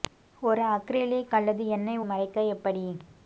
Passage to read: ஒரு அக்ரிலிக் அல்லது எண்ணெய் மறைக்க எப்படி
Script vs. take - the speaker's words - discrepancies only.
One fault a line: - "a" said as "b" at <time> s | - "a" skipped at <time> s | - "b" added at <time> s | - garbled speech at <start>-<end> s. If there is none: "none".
none